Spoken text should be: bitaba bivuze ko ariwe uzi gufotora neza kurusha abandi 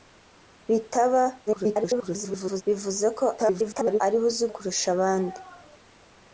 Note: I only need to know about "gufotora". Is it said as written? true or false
false